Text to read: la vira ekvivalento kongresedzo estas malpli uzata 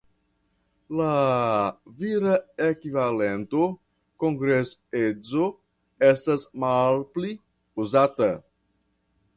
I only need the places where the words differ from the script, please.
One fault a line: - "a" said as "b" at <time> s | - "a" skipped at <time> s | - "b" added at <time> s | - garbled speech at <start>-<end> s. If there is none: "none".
none